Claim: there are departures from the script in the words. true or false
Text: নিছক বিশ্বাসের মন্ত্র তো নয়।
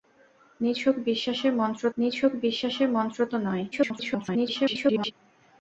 true